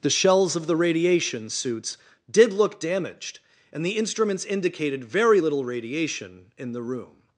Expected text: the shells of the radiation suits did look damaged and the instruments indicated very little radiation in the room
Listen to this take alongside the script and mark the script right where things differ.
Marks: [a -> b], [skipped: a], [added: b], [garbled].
the shells of the radiation suits did look damaged and the instruments indicated very little radiation in the room